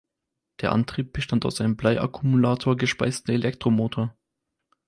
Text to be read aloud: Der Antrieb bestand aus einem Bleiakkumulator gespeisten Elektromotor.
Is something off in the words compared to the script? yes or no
no